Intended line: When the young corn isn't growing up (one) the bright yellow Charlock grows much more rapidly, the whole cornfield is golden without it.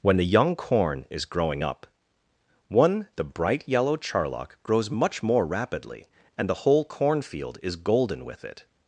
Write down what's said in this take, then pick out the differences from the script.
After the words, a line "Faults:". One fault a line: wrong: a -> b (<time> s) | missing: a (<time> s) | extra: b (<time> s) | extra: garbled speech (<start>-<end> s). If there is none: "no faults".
When the young corn is growing up (one) the bright yellow Charlock grows much more rapidly, and the whole cornfield is golden with it.
Faults:
wrong: isn't -> is (1.1 s)
extra: and (6.4 s)
wrong: without -> with (8.2 s)